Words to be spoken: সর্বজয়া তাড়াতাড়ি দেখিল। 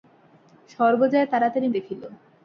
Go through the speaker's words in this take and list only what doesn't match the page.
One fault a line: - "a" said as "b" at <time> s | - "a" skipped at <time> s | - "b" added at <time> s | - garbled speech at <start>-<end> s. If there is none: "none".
none